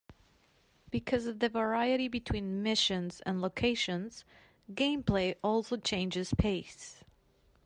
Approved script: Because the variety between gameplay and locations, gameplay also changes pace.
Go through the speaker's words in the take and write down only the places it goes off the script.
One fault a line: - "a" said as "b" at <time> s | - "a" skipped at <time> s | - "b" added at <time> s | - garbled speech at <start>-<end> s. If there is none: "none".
- "of" added at 1.3 s
- "gameplay" said as "missions" at 2.6 s